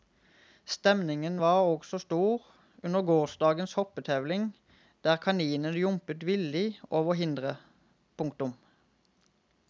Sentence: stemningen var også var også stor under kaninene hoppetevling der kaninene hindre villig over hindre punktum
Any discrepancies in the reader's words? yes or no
yes